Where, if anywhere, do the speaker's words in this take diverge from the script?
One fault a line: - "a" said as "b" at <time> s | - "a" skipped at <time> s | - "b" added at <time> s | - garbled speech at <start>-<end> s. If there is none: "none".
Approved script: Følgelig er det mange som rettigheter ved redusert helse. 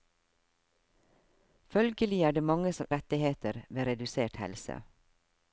none